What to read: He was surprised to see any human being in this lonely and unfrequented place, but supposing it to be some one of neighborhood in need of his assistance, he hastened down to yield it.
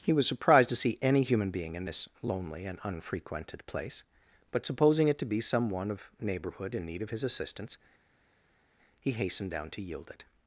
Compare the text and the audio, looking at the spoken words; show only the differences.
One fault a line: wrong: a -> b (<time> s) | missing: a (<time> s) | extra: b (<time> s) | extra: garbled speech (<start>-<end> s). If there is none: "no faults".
no faults